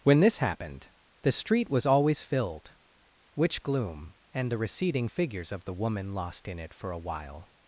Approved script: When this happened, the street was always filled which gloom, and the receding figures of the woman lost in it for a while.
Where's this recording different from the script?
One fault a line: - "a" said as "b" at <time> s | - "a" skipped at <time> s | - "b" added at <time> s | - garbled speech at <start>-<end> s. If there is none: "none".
none